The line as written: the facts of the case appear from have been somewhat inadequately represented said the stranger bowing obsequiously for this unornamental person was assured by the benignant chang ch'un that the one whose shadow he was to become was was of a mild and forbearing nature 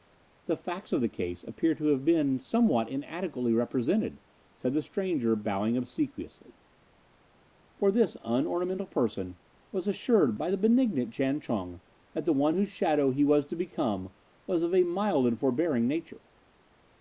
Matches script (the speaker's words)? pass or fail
fail